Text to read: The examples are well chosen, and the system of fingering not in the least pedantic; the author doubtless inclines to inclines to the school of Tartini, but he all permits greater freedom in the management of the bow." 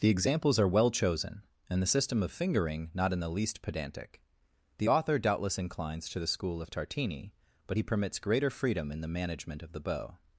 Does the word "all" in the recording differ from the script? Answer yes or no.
yes